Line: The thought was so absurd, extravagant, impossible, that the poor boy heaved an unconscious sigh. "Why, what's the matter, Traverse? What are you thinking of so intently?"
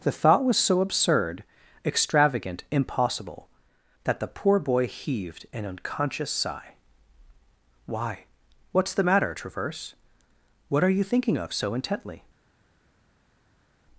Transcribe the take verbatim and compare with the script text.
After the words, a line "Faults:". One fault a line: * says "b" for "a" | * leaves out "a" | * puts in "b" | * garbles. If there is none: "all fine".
The thought was so absurd, extravagant, impossible, that the poor boy heaved an unconscious sigh. "Why, what's the matter, Traverse? What are you thinking of so intently?"
Faults:
all fine